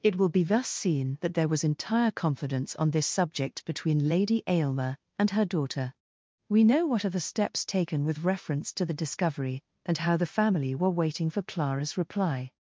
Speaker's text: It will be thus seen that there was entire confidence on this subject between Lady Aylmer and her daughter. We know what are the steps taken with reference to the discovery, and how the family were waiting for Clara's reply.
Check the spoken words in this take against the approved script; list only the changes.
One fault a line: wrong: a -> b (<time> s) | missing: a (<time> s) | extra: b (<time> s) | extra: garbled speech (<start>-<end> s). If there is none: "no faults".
no faults